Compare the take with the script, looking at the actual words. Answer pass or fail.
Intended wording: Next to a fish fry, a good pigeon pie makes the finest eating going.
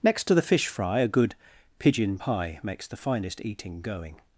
fail